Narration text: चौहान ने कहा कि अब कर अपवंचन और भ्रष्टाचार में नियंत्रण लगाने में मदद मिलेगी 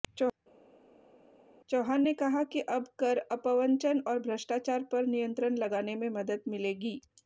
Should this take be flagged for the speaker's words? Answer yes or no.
yes